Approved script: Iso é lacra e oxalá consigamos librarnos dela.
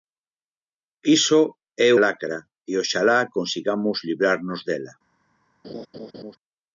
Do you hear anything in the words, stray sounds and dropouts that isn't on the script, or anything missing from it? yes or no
yes